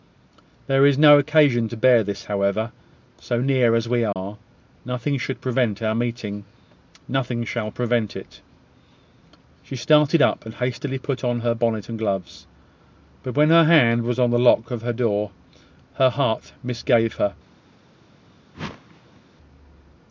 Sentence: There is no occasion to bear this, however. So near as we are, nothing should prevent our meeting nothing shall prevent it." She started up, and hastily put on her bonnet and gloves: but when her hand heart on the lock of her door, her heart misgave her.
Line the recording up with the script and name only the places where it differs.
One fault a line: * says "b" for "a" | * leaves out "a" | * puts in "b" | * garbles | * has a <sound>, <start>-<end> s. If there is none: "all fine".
* has a dropout, 4.1-4.2 s
* says "was" for "heart"
* has a whoosh, 18.5-19.2 s